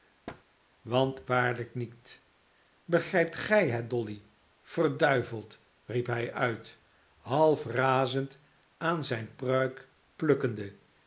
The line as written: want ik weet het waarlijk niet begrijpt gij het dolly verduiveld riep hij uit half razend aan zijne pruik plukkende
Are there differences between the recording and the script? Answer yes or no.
yes